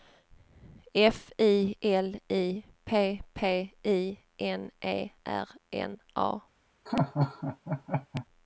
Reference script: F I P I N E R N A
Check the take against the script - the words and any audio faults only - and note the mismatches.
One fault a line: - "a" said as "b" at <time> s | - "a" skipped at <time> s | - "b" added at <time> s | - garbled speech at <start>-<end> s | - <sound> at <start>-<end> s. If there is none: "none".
- "L I P" added at 1.8 s
- laugh at 6.9-8.3 s